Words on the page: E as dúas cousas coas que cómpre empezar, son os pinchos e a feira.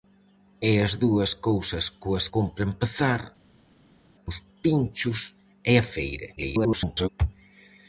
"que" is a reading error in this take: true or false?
true